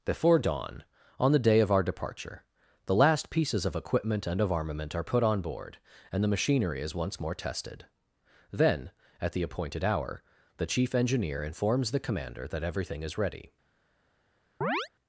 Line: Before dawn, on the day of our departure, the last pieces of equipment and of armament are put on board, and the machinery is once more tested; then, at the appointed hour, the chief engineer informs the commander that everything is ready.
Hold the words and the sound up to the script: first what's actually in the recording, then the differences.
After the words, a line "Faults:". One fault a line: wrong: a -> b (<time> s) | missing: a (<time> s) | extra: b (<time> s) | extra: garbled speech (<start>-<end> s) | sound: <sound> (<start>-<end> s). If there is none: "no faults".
Before dawn, on the day of our departure, the last pieces of equipment and of armament are put on board, and the machinery is once more tested; then, at the appointed hour, the chief engineer informs the commander that everything is ready.
Faults:
sound: chirp (14.6-14.9 s)